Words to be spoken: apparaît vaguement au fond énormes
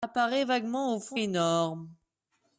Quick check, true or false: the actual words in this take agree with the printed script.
true